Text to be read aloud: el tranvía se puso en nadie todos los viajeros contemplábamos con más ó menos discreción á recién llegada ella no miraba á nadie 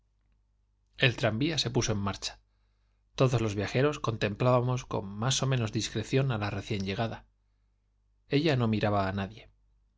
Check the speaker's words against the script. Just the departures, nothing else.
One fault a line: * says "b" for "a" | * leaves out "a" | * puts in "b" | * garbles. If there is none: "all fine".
* says "marcha" for "nadie"
* puts in "la"